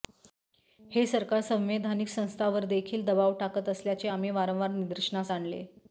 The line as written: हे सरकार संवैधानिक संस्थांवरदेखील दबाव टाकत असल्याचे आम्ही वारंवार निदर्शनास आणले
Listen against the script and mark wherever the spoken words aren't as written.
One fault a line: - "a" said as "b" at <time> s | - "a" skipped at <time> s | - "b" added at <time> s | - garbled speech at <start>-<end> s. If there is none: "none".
none